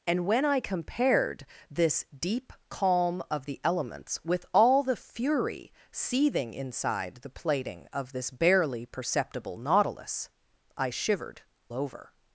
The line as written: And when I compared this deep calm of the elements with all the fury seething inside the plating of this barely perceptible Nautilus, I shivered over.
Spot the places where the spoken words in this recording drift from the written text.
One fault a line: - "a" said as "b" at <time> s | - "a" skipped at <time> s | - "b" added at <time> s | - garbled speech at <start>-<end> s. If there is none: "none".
none